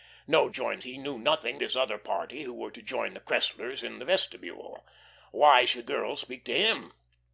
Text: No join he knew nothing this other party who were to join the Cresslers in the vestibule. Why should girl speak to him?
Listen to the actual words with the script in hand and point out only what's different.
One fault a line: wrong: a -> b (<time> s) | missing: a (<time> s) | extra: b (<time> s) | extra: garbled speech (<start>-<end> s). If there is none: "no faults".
no faults